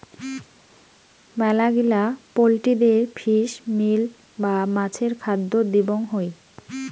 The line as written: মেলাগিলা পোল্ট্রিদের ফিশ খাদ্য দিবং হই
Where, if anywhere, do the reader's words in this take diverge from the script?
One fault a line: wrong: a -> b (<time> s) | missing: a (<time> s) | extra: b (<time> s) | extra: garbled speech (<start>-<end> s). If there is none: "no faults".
extra: মিল বা মাছের (3.8 s)